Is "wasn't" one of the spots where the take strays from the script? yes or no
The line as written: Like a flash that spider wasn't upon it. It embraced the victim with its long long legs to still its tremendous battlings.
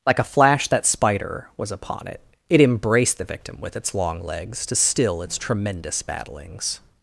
yes